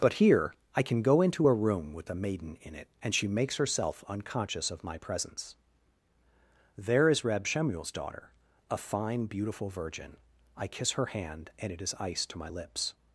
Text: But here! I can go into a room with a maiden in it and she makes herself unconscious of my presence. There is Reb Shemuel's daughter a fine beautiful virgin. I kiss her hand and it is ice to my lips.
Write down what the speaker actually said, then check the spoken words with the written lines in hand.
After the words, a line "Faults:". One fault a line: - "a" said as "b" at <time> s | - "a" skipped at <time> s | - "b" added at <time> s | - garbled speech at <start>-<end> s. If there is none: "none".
But here! I can go into a room with a maiden in it and she makes herself unconscious of my presence. There is Reb Shemuel's daughter a fine beautiful virgin. I kiss her hand and it is ice to my lips.
Faults:
none